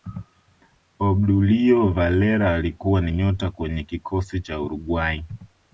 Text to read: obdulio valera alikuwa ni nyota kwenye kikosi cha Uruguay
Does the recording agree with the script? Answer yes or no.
yes